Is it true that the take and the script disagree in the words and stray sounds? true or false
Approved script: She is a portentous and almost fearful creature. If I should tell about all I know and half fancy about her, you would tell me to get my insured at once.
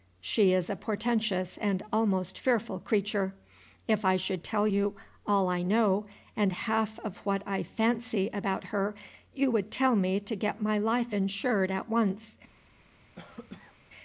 true